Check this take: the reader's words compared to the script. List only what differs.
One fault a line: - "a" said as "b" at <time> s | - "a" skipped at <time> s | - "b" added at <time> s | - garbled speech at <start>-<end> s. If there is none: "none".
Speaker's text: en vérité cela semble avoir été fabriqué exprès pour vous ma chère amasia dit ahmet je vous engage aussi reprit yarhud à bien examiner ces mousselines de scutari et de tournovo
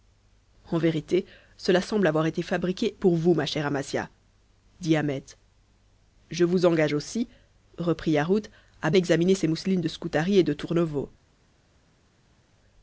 - "exprès" skipped at 3.0 s
- "bien" skipped at 8.9 s